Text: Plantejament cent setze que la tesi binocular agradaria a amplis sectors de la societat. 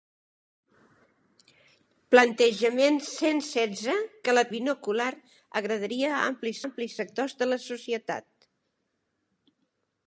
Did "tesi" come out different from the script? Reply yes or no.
yes